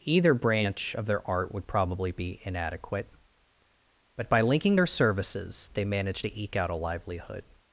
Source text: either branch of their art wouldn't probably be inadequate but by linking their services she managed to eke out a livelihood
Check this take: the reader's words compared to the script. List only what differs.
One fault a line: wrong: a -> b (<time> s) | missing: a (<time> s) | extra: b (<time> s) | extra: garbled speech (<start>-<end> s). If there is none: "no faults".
wrong: wouldn't -> would (1.5 s)
wrong: she -> they (5.7 s)